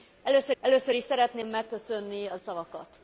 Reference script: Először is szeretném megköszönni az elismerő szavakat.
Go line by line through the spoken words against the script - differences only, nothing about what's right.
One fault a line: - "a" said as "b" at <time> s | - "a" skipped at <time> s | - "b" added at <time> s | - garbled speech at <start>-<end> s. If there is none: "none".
- "először" added at 0.6 s
- "elismerő" skipped at 2.4 s